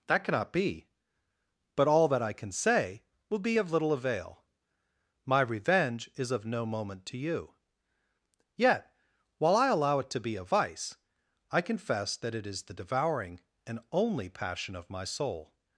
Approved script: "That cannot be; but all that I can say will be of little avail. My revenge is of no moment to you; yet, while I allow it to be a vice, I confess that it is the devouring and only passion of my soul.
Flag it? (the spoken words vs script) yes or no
no